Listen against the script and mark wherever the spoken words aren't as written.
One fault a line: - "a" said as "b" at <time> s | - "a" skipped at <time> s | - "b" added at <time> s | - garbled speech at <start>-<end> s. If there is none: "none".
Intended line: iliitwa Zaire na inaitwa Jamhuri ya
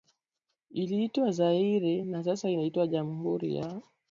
- "sasa" added at 2.2 s